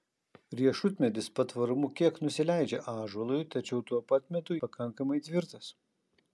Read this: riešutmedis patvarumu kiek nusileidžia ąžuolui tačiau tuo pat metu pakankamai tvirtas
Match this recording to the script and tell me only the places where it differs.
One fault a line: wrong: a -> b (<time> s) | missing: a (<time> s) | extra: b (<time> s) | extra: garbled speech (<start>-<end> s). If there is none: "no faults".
no faults